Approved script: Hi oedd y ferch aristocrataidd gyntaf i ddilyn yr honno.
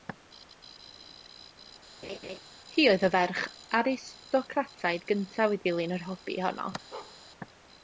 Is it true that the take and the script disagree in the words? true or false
true